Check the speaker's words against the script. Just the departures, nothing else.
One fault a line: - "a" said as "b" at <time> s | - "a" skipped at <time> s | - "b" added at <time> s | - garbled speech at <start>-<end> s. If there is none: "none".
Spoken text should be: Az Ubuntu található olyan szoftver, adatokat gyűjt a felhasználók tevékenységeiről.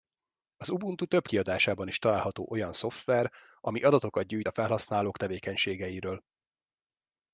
- "több kiadásában is" added at 1.1 s
- "ami" added at 3.6 s